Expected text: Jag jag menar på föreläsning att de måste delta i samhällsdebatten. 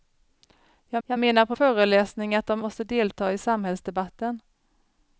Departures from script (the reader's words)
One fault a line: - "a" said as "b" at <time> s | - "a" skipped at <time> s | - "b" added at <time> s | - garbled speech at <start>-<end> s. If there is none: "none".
none